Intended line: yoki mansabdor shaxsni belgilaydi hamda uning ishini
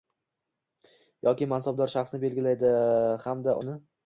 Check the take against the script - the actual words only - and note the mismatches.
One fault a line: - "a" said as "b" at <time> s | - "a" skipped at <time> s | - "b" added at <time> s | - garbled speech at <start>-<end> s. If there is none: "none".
- "uning" skipped at 3.6 s